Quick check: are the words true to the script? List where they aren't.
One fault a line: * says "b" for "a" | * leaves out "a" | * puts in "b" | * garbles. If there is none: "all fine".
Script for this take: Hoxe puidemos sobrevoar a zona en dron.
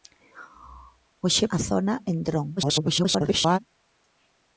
* leaves out "puidemos sobrevoar"
* garbles